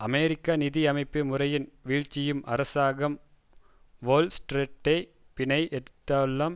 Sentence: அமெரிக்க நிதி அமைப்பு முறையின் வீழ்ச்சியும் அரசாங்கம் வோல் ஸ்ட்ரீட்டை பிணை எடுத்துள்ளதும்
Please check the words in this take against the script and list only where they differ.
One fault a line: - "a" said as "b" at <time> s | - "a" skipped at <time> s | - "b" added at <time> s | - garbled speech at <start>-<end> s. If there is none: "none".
none